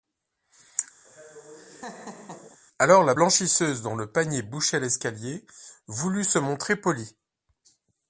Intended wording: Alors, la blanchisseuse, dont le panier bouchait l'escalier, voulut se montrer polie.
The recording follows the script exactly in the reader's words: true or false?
true